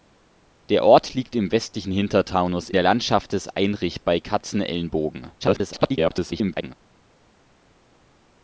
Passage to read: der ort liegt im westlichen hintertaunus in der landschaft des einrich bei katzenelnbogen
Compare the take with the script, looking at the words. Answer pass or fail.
fail